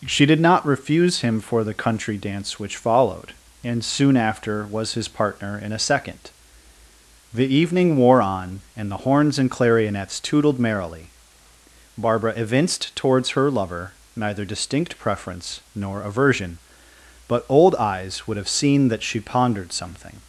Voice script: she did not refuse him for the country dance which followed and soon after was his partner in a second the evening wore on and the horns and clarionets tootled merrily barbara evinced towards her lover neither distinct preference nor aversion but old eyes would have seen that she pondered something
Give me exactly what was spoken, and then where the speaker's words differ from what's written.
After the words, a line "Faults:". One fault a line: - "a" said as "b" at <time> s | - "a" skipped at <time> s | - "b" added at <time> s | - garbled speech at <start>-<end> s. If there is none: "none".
she did not refuse him for the country dance which followed and soon after was his partner in a second the evening wore on and the horns and clarionets tootled merrily barbara evinced towards her lover neither distinct preference nor aversion but old eyes would have seen that she pondered something
Faults:
none